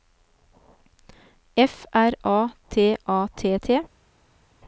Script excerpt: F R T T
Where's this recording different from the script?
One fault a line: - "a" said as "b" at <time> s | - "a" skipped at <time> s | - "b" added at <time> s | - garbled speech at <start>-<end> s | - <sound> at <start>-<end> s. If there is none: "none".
- "A T A" added at 2.2 s